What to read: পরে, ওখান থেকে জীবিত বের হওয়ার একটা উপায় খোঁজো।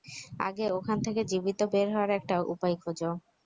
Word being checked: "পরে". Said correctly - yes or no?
no